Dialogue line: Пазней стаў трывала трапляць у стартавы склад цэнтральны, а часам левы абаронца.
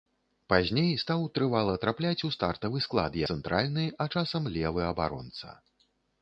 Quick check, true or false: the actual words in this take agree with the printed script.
true